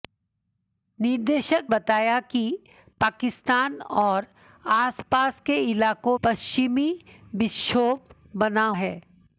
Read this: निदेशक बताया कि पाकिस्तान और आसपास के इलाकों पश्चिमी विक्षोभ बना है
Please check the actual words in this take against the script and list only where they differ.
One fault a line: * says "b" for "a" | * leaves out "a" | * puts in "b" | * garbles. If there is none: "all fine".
all fine